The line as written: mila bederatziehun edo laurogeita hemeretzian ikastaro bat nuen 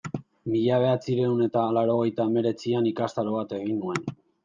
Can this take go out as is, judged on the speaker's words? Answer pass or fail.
fail